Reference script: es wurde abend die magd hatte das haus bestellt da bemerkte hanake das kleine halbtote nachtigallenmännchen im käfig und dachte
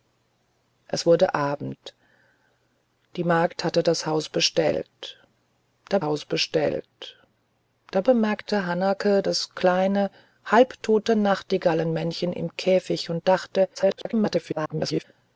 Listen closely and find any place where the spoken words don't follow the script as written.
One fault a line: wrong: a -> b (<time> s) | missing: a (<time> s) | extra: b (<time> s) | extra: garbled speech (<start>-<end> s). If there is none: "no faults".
extra: haus bestellt da (6.0 s)
extra: garbled speech (13.7-15.0 s)